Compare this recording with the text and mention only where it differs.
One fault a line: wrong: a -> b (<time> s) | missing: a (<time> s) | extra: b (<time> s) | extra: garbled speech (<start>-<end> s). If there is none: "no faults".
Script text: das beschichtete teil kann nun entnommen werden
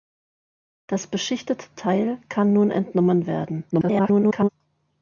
extra: garbled speech (3.7-4.5 s)